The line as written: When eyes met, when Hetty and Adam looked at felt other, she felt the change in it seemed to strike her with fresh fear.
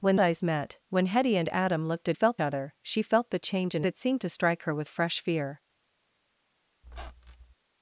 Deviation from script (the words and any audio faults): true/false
true